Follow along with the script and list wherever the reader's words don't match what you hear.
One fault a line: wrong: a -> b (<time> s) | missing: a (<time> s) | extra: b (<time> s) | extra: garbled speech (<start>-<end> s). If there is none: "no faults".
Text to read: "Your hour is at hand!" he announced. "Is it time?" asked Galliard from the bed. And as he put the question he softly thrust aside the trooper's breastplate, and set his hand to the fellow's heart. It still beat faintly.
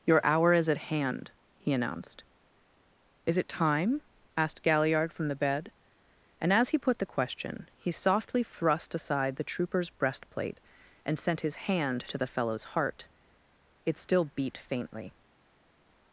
wrong: set -> sent (11.2 s)